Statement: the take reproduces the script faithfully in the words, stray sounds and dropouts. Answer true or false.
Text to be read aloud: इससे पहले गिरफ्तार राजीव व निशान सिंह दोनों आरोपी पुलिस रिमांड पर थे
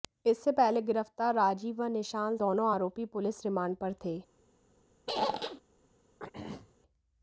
false